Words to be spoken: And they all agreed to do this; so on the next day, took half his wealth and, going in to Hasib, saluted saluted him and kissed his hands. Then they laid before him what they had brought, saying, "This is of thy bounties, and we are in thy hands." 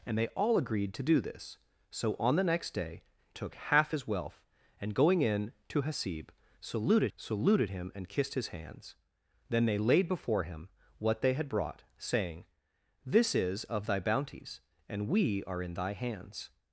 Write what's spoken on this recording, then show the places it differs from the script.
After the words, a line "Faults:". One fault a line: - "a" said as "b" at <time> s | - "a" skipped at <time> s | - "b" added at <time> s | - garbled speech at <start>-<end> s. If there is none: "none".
And they all agreed to do this; so on the next day, took half his wealth and, going in to Hasib, saluted saluted him and kissed his hands. Then they laid before him what they had brought, saying, "This is of thy bounties, and we are in thy hands."
Faults:
none